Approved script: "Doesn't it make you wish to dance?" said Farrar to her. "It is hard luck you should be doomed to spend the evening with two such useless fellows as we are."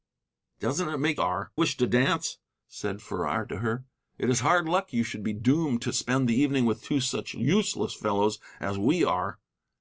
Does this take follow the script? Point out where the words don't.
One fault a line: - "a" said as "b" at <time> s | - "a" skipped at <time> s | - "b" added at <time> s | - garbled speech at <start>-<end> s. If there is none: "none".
- "you" said as "are" at 1.2 s